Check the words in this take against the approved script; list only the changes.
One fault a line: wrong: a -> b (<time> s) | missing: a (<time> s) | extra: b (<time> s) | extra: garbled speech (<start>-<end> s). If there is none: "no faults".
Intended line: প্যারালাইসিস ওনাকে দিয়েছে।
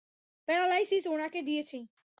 no faults